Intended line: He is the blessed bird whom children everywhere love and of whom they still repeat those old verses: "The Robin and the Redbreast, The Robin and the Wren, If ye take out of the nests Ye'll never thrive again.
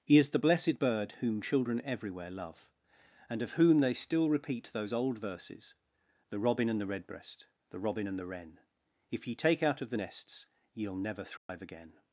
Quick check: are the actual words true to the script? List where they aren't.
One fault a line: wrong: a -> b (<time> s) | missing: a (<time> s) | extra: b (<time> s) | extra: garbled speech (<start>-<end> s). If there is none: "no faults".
no faults